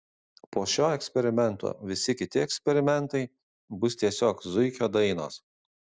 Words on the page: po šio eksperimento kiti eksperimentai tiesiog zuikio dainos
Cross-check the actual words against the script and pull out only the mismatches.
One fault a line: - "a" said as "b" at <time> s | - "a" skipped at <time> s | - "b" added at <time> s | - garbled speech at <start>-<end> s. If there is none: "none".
- "visi" added at 1.9 s
- "bus" added at 3.8 s